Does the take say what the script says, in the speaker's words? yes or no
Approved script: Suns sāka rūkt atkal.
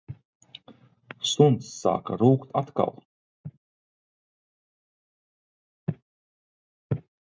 yes